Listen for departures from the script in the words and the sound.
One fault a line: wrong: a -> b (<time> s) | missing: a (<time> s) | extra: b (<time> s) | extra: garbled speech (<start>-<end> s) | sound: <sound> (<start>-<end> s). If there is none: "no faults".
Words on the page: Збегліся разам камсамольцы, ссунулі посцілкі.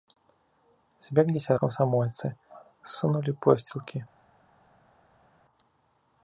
missing: разам (1.6 s)